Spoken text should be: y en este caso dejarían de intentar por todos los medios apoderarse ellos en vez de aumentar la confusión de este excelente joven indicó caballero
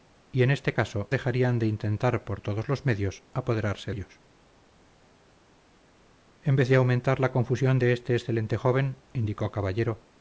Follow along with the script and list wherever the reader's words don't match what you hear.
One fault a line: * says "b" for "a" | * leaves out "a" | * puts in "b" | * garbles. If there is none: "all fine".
all fine